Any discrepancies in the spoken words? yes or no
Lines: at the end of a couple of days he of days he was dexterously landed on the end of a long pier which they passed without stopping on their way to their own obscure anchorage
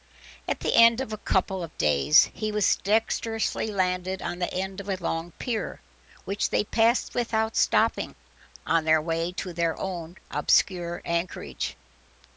yes